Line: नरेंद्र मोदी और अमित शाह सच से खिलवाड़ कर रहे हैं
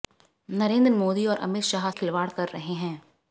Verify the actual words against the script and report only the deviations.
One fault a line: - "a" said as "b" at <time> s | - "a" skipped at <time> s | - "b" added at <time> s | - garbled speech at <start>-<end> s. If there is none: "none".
- "सच से" skipped at 1.9 s